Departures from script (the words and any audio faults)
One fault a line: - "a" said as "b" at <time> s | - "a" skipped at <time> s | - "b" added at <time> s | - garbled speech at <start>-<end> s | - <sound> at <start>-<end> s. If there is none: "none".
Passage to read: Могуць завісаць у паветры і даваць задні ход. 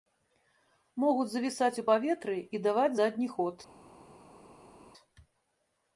none